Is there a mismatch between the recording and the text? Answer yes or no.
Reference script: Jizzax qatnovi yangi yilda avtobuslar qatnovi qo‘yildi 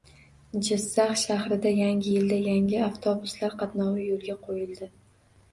yes